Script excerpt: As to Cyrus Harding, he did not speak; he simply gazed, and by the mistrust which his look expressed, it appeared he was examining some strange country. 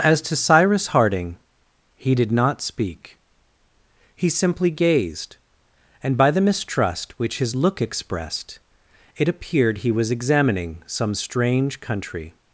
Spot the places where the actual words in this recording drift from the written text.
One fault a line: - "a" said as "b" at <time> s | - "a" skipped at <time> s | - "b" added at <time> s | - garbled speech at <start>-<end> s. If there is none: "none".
none